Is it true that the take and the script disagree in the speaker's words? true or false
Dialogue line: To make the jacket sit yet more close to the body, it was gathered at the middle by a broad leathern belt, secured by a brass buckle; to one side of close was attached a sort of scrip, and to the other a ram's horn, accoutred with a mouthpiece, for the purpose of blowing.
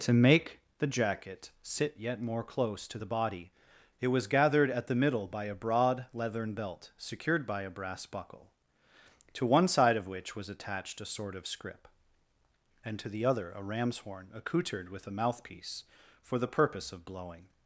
true